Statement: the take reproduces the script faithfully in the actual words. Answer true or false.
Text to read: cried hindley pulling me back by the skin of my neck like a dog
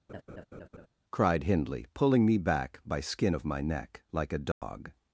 false